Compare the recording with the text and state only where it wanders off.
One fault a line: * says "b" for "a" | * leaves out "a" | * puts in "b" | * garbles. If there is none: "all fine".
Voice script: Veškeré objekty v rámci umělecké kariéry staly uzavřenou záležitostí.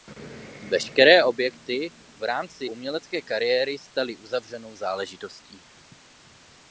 all fine